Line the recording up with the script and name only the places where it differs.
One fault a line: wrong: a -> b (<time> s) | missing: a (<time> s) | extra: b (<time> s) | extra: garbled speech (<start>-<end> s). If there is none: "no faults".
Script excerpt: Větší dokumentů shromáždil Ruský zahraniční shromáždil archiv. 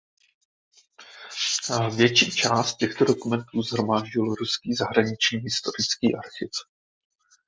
extra: část těchto (2.3 s)
wrong: shromáždil -> historický (5.4 s)